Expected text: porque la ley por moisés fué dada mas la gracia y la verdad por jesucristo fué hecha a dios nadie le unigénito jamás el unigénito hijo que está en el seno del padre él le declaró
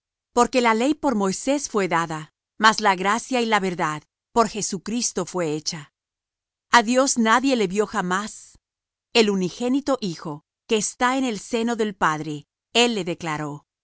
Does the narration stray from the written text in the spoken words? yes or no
yes